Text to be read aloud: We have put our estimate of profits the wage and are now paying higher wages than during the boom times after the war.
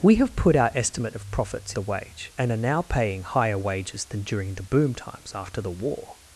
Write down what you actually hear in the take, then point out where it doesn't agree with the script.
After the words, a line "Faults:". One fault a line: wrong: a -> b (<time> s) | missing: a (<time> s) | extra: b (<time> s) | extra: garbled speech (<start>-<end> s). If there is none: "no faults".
We have put our estimate of profits the wage and are now paying higher wages than during the boom times after the war.
Faults:
no faults